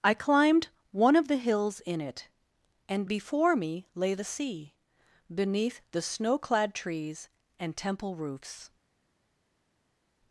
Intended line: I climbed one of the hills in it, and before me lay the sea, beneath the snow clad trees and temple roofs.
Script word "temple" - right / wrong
right